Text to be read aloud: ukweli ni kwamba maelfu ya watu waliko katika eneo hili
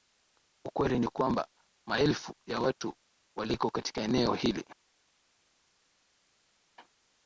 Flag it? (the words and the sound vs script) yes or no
no